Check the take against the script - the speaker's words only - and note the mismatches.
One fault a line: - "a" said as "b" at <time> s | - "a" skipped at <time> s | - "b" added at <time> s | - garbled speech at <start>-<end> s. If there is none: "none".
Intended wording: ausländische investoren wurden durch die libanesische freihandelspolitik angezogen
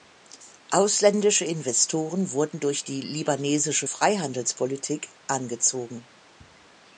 none